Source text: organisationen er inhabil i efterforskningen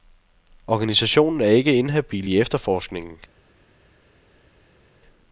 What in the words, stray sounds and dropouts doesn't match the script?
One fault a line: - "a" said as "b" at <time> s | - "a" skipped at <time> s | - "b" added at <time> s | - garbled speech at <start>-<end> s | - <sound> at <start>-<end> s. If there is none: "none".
- "ikke" added at 1.4 s